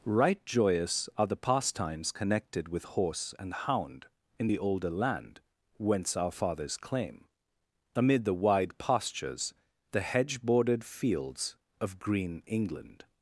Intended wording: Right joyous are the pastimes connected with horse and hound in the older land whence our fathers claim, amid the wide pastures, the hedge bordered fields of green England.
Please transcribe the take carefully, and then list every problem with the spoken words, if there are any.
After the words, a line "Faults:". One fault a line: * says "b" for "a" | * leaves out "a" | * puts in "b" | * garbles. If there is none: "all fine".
Right joyous are the pastimes connected with horse and hound in the older land whence our fathers claim, amid the wide pastures, the hedge bordered fields of green England.
Faults:
all fine